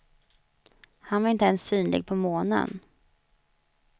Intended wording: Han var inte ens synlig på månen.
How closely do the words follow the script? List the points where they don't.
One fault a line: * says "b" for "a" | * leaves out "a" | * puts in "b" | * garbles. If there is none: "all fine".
all fine